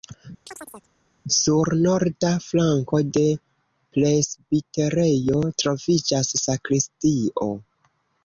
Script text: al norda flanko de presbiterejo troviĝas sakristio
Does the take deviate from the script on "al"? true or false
true